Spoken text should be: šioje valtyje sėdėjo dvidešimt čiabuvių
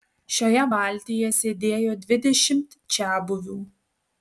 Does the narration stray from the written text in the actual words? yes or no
no